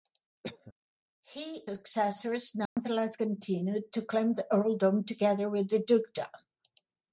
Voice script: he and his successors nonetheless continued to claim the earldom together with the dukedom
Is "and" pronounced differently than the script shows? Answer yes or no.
yes